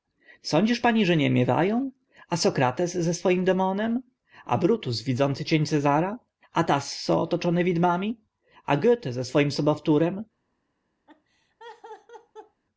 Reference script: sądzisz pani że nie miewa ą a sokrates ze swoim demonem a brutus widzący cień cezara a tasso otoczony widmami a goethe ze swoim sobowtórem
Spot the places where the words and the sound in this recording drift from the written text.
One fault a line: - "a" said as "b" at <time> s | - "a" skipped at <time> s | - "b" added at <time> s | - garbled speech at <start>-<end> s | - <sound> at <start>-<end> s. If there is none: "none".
- laugh at 11.1-12.6 s